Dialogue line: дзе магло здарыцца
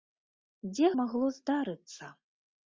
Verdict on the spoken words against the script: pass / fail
pass